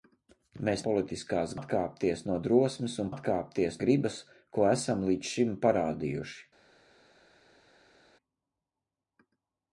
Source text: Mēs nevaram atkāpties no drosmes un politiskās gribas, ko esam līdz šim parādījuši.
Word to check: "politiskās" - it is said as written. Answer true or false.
false